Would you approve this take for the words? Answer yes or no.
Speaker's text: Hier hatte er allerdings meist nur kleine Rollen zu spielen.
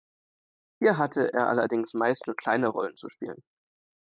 yes